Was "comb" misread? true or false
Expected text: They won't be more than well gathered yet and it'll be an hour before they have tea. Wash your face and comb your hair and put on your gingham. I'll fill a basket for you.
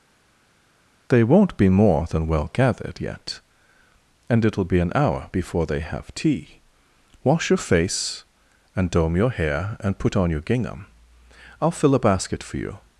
true